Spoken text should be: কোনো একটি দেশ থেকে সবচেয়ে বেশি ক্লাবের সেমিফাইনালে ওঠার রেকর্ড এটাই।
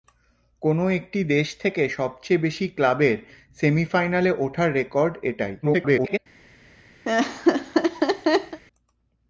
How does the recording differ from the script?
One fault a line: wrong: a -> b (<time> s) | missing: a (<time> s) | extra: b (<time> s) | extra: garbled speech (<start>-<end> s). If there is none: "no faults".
extra: garbled speech (5.6-6.2 s)